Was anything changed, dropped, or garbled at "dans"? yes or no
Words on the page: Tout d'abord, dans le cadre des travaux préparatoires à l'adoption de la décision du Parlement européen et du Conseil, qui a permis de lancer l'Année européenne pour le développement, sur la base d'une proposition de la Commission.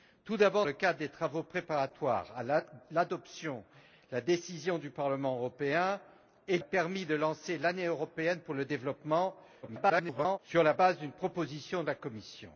yes